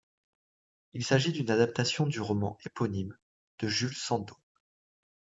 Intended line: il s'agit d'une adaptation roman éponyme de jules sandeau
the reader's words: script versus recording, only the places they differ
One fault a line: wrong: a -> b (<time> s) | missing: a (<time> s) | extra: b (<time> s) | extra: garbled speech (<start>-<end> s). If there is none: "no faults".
extra: du (2.1 s)